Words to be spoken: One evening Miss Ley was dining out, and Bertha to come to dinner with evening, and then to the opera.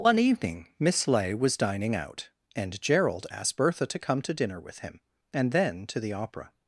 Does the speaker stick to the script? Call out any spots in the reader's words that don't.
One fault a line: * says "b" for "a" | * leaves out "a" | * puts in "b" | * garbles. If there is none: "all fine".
* puts in "Gerald asked"
* says "him" for "evening"